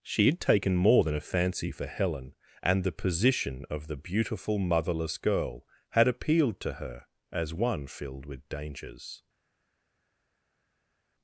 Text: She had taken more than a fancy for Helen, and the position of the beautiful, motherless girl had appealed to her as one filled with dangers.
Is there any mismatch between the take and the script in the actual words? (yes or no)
no